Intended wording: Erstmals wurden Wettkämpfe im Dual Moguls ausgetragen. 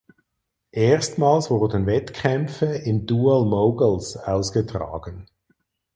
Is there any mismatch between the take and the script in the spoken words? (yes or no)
no